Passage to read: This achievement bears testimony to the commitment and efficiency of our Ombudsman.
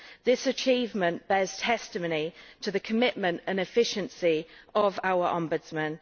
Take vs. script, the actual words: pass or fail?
pass